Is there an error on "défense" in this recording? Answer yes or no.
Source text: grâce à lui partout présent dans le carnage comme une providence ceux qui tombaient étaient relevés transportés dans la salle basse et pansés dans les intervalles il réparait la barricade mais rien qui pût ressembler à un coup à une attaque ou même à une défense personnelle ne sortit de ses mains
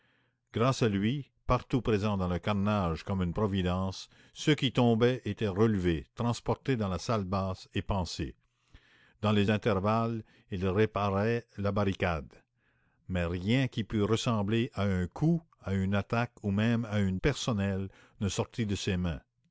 yes